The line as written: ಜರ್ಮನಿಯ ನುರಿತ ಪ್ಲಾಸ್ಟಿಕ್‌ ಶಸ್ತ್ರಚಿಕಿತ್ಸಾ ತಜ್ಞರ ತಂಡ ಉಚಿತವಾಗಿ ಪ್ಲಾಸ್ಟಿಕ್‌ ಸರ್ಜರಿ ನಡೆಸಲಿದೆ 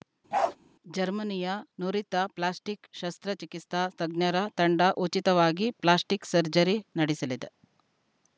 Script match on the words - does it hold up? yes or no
yes